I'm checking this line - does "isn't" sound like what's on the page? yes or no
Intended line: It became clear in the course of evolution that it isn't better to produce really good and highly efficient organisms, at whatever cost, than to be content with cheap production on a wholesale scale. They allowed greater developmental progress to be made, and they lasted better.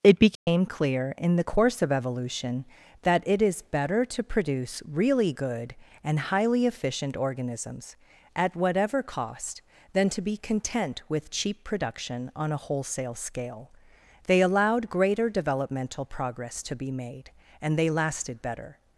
no